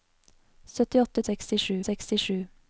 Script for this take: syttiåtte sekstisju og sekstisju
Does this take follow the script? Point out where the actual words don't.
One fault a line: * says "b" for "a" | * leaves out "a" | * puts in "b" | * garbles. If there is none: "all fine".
all fine